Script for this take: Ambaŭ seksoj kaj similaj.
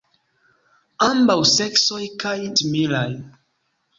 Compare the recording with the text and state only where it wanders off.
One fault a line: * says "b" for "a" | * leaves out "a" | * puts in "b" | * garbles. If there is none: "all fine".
all fine